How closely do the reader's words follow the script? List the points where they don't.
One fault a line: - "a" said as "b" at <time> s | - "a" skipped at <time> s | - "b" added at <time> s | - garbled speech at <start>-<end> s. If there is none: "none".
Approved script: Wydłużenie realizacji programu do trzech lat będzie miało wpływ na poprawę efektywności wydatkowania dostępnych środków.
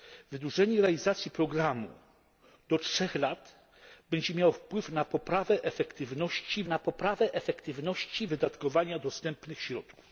- "na poprawę efektywności" added at 6.6 s